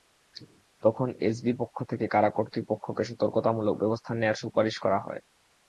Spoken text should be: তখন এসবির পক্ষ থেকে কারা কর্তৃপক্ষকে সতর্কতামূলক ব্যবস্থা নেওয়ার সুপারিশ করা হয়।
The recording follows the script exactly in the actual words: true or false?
true